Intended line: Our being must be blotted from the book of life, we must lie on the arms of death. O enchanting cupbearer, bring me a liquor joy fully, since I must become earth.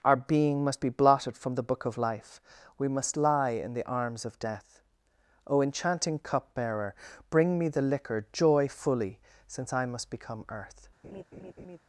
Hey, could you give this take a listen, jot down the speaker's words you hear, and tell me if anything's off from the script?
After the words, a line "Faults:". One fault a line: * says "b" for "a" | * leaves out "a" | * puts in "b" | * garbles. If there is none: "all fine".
Our being must be blotted from the book of life, we must lie in the arms of death. O enchanting cupbearer, bring me the liquor joy fully, since I must become earth.
Faults:
* says "in" for "on"
* says "the" for "a"